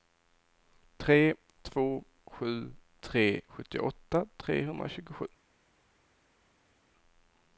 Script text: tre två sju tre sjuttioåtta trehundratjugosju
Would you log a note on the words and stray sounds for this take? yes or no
no